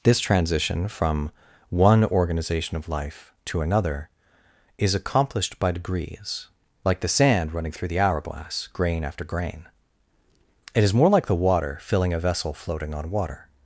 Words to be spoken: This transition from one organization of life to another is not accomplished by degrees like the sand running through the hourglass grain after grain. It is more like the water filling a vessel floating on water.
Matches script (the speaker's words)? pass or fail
fail